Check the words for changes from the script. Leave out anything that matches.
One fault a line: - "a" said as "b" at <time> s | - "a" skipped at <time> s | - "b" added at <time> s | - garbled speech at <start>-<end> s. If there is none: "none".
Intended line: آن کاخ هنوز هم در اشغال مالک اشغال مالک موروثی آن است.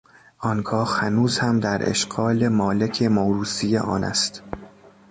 - "اشغال مالک" skipped at 3.0 s